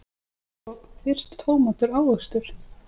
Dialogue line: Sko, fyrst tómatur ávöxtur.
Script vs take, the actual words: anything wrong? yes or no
no